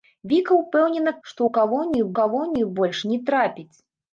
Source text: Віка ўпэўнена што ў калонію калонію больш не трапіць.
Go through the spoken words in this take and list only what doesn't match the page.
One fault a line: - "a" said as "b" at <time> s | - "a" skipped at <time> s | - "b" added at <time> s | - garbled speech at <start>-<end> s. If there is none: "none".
none